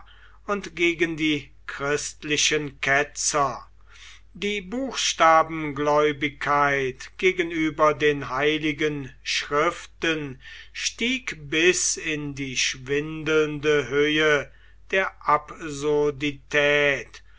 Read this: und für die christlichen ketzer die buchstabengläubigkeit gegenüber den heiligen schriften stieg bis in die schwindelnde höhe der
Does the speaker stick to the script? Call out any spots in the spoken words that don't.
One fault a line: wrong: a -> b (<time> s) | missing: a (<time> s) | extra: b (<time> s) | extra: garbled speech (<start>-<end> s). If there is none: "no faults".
wrong: für -> gegen (0.8 s)